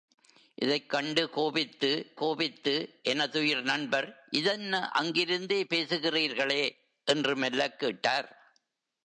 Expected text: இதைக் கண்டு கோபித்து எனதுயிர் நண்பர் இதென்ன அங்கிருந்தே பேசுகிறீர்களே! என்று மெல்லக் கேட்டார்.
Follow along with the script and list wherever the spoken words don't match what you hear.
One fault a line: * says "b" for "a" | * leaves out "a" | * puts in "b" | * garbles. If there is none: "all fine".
* puts in "கோபித்து"